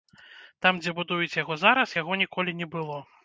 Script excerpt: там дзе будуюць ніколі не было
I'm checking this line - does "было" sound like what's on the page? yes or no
yes